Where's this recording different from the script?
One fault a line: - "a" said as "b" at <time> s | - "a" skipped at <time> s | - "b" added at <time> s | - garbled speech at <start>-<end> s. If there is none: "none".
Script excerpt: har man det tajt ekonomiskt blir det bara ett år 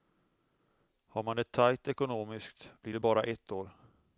none